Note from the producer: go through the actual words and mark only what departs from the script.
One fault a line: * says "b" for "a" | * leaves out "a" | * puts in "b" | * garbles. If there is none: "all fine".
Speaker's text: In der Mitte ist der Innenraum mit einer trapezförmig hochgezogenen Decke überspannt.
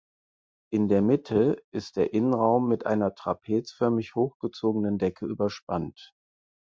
all fine